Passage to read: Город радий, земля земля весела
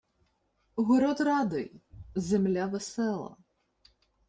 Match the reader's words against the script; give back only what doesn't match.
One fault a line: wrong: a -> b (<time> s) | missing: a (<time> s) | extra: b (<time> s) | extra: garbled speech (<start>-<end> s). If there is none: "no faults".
missing: земля (2.6 s)